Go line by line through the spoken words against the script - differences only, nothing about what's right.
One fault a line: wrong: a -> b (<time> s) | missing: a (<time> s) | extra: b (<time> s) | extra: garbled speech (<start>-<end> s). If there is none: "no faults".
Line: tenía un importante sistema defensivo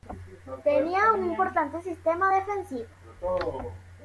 no faults